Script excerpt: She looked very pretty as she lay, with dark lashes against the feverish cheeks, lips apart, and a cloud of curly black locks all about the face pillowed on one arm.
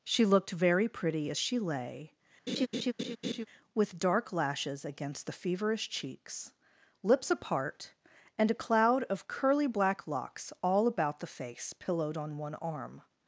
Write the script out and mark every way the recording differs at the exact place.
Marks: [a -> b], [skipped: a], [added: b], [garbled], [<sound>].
She looked very pretty as she lay, [laugh] with dark lashes against the feverish cheeks, lips apart, and a cloud of curly black locks all about the face pillowed on one arm.